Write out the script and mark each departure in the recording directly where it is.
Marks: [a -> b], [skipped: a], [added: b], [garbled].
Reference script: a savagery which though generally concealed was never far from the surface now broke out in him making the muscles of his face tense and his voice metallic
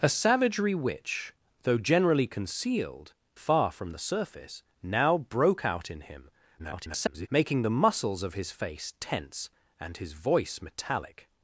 a savagery which though generally concealed [skipped: was never] far from the surface now broke out in him [garbled] making the muscles of his face tense and his voice metallic